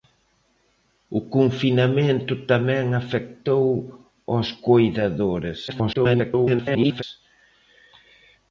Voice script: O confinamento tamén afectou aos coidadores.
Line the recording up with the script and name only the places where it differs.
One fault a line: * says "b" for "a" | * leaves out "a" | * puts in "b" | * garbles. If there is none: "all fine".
* garbles